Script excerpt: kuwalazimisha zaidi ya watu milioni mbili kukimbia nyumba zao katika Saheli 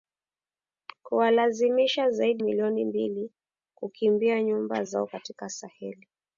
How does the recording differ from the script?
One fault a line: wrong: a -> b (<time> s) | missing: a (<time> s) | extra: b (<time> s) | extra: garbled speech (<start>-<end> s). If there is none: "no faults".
missing: ya watu (2.4 s)